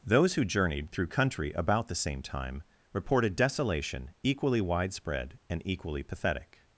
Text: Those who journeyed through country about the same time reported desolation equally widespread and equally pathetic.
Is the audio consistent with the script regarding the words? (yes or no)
yes